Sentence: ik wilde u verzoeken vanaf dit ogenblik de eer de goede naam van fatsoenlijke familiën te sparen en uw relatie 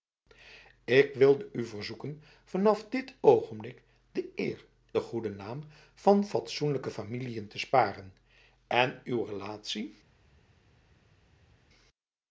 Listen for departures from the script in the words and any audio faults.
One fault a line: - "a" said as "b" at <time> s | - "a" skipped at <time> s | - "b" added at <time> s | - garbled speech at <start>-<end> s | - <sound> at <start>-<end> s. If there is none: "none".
none